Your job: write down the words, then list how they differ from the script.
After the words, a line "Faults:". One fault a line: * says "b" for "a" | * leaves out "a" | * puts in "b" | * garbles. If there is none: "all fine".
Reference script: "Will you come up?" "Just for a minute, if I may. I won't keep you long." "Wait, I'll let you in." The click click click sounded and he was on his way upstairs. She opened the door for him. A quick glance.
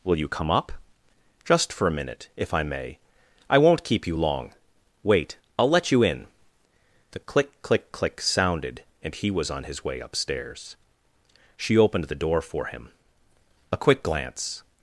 "Will you come up?" "Just for a minute, if I may. I won't keep you long." "Wait, I'll let you in." The click click click sounded and he was on his way upstairs. She opened the door for him. A quick glance.
Faults:
all fine